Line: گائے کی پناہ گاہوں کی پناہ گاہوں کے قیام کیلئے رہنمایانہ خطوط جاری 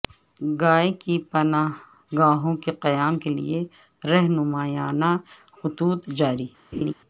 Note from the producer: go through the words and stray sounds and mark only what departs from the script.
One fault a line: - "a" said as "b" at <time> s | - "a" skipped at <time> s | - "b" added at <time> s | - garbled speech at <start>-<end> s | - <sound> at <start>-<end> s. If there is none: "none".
- "کی پناہ گاہوں" skipped at 2.5 s
- laugh at 6.7-6.9 s